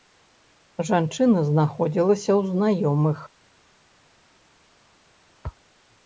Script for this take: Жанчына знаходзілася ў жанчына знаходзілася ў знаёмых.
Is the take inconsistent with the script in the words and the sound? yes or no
yes